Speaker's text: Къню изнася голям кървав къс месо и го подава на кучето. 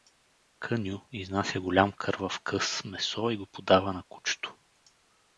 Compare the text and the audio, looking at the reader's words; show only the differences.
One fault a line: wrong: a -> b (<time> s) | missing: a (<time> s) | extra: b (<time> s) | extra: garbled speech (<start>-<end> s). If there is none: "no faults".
no faults